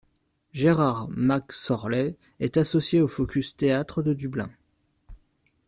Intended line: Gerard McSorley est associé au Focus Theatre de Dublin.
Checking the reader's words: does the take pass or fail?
pass